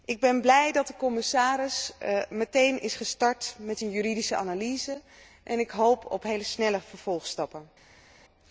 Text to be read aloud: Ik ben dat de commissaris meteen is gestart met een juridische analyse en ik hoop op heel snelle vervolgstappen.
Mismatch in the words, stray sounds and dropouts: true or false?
true